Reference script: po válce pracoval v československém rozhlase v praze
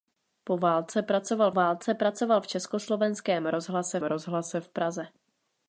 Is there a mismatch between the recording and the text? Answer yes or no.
yes